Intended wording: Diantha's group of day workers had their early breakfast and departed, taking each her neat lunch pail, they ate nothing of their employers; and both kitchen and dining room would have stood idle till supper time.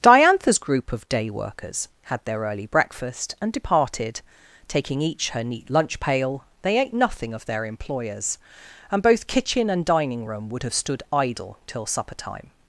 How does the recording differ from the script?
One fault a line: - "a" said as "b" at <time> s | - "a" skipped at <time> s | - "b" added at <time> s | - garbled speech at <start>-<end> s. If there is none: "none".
none